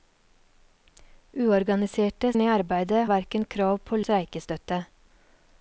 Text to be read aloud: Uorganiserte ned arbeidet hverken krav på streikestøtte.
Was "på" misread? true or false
false